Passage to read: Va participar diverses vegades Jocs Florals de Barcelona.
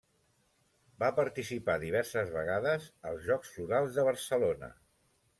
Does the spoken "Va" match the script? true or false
true